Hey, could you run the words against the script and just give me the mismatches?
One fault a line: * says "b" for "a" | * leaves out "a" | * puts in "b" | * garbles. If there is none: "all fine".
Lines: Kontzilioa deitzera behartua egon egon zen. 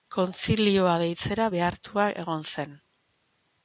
* leaves out "egon"